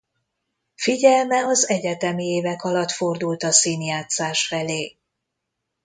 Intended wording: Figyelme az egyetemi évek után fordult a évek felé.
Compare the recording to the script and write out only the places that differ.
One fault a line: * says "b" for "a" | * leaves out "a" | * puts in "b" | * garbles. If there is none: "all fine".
* says "alatt" for "után"
* says "színjátszás" for "évek"